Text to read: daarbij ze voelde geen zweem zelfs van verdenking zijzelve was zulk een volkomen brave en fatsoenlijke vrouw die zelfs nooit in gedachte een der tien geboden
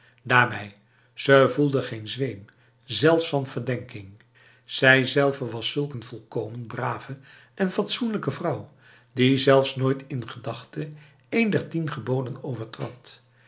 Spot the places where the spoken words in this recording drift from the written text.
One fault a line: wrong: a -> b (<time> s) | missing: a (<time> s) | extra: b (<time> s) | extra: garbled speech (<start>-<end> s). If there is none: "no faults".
no faults